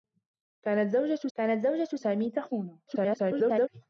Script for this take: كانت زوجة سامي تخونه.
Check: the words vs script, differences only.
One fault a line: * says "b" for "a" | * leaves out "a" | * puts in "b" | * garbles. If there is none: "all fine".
* puts in "كانت زوجة"
* garbles